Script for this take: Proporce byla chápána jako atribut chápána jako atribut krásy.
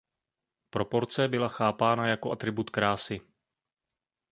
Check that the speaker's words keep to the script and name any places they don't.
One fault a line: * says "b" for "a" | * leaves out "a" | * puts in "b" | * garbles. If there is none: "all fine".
* leaves out "chápána jako atribut"